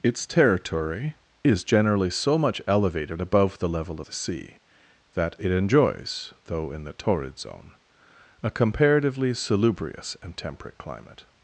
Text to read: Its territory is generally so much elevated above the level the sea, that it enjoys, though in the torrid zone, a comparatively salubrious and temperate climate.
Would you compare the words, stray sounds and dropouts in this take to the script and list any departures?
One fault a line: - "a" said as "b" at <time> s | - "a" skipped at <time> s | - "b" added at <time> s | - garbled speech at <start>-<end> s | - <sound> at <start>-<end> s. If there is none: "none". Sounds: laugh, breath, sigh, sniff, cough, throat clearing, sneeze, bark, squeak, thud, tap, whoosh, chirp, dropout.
none